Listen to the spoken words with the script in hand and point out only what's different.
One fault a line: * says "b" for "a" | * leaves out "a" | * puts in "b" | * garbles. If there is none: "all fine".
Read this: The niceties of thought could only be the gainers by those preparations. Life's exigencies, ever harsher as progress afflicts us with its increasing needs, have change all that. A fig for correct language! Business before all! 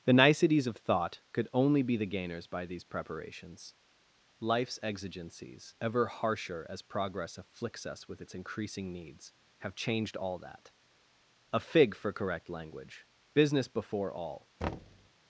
* says "these" for "those"
* says "changed" for "change"